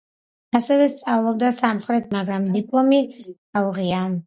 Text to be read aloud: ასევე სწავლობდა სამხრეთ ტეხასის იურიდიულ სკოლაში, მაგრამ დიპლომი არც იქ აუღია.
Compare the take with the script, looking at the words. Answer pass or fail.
fail